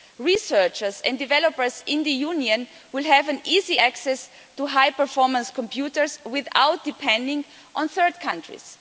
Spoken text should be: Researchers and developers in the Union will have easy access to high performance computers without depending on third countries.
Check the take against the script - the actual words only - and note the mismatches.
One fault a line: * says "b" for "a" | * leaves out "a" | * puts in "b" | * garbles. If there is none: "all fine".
all fine